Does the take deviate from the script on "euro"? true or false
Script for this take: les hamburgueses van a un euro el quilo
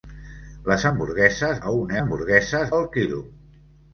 true